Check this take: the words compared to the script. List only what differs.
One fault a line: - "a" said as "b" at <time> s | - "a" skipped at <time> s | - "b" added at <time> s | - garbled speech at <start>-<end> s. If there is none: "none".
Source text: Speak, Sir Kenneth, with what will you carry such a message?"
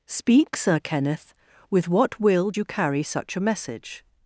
none